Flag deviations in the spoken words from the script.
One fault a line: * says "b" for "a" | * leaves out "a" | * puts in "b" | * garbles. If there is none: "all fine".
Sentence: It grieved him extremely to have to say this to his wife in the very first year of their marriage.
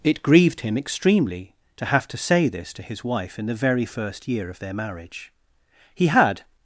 * puts in "He had"